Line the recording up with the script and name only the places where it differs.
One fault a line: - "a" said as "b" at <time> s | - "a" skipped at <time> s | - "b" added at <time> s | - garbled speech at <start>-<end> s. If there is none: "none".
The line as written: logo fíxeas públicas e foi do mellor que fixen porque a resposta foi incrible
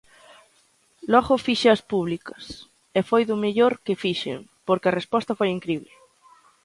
none